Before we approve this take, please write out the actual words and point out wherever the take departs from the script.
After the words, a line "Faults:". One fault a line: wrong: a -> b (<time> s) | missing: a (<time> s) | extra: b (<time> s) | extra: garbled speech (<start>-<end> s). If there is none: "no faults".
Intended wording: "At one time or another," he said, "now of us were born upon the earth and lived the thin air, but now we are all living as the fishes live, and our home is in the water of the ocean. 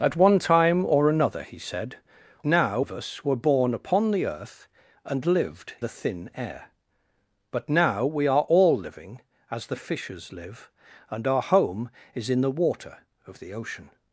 "At one time or another," he said, "now of us were born upon the earth and lived the thin air, but now we are all living as the fishes live, and our home is in the water of the ocean.
Faults:
no faults